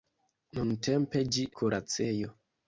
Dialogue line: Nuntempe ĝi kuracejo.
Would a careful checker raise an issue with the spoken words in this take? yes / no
no